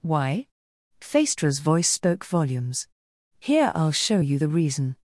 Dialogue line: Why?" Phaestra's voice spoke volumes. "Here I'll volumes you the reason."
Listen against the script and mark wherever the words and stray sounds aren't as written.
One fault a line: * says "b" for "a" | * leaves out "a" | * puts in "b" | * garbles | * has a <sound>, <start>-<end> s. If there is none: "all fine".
* says "show" for "volumes"